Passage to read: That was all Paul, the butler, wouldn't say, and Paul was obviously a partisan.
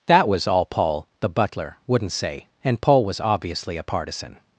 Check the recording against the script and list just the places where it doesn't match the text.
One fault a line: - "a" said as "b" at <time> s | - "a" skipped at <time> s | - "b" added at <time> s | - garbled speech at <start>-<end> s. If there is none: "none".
none